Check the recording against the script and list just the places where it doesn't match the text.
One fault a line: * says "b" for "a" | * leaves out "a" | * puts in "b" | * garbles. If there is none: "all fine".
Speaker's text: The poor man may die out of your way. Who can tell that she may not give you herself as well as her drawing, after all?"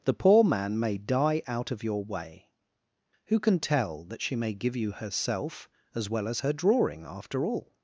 * leaves out "not"